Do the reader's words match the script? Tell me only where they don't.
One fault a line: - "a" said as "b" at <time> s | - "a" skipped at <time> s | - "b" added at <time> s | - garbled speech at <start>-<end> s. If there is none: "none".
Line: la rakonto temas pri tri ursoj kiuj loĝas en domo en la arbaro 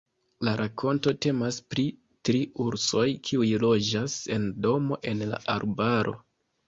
none